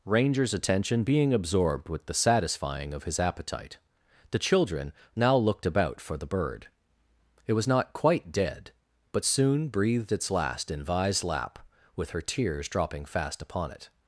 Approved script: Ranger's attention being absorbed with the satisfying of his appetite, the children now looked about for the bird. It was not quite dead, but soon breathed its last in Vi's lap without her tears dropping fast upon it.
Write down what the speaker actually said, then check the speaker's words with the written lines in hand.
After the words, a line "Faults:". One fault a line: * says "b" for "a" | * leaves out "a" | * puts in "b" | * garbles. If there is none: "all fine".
Ranger's attention being absorbed with the satisfying of his appetite, the children now looked about for the bird. It was not quite dead, but soon breathed its last in Vi's lap with her tears dropping fast upon it.
Faults:
* says "with" for "without"